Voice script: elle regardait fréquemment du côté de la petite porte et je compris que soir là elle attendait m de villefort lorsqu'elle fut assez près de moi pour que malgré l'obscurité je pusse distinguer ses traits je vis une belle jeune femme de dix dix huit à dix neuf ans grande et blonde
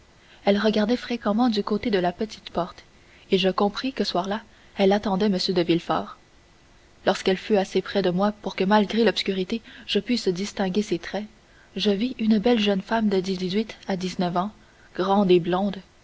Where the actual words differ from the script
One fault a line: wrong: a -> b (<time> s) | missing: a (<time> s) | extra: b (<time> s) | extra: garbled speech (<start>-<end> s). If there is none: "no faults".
no faults